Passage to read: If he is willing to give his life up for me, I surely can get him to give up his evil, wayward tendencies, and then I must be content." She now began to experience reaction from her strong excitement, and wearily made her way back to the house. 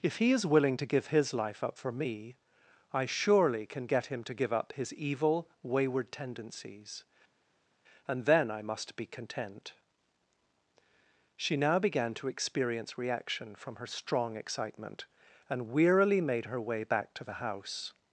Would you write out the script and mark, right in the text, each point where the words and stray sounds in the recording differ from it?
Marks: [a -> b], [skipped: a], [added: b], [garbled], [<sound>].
If he is willing to give his life up for me, I surely can get him to give up his evil, wayward tendencies, and then I must be content." She now began to experience reaction from her strong excitement, and wearily made her way back to the house.